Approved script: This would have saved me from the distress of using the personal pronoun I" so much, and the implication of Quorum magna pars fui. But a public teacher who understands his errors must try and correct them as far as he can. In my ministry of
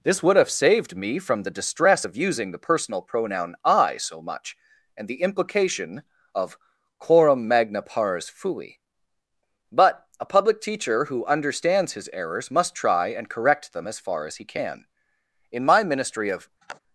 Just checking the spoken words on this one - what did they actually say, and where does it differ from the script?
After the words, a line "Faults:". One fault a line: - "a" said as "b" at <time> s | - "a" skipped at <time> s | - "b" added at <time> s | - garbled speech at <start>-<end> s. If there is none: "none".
This would have saved me from the distress of using the personal pronoun I" so much, and the implication of Quorum magna pars fui. But a public teacher who understands his errors must try and correct them as far as he can. In my ministry of
Faults:
none